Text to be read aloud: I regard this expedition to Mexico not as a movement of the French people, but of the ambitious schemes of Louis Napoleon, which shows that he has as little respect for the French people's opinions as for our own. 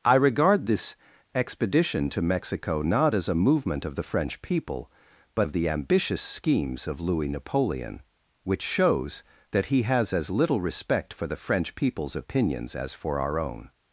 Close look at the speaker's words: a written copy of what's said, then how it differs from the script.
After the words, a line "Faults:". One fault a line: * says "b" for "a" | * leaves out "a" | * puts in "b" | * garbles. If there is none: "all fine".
I regard this expedition to Mexico not as a movement of the French people, but of the ambitious schemes of Louis Napoleon, which shows that he has as little respect for the French people's opinions as for our own.
Faults:
all fine